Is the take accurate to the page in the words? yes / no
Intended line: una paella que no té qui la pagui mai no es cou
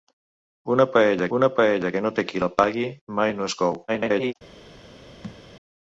no